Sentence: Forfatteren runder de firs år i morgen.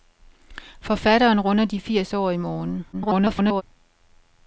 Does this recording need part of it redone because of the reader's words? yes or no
yes